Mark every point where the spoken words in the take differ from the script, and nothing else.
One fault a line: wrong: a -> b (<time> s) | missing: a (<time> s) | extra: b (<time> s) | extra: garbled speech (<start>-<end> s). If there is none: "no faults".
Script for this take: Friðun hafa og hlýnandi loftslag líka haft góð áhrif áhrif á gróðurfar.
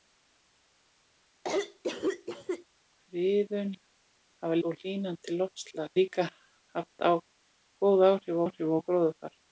no faults